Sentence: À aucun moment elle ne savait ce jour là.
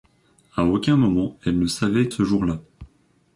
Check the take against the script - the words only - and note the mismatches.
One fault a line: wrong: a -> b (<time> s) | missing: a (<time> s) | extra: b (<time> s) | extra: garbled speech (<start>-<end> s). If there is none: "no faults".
no faults